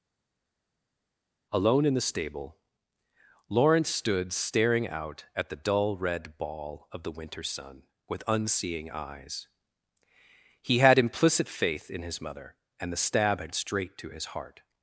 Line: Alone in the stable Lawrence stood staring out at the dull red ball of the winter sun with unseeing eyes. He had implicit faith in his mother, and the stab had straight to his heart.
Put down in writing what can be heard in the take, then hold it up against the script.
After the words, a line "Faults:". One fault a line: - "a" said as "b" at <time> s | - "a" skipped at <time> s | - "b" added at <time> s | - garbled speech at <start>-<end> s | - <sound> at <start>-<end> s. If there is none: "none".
Alone in the stable Lawrence stood staring out at the dull red ball of the winter sun with unseeing eyes. He had implicit faith in his mother, and the stab had straight to his heart.
Faults:
none